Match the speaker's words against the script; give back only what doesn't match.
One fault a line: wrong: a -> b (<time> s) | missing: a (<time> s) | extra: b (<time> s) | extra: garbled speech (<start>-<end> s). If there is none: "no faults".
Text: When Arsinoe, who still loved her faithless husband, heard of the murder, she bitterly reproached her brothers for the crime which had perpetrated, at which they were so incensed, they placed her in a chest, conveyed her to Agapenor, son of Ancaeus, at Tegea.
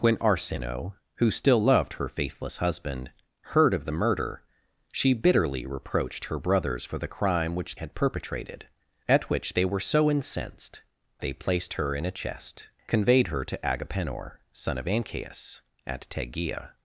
no faults